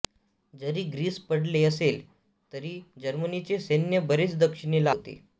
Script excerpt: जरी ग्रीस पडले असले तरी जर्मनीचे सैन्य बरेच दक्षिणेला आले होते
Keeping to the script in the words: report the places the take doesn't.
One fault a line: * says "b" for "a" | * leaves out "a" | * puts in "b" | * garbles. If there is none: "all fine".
* leaves out "आले"